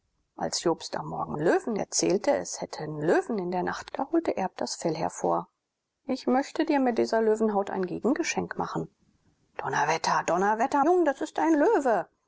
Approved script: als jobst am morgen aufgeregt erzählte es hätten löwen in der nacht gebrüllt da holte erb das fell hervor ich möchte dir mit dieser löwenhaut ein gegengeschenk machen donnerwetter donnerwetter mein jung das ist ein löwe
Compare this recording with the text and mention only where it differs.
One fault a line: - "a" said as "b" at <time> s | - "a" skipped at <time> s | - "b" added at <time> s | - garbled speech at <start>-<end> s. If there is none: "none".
- "aufgeregt" said as "löwen" at 1.4 s
- "gebrüllt" skipped at 3.9 s
- "mein" skipped at 10.8 s